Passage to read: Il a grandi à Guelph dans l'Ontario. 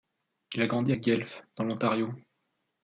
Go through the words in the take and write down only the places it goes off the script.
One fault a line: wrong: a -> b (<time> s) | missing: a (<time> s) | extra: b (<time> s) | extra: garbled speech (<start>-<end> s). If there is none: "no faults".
no faults